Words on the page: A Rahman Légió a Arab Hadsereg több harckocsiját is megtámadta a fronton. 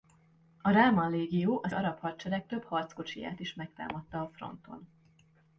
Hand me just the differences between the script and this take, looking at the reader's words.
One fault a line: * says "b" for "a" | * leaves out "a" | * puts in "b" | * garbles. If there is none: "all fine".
all fine